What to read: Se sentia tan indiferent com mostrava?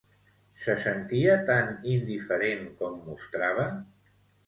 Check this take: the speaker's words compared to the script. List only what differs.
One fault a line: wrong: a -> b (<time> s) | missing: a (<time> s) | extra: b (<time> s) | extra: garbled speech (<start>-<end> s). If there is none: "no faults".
no faults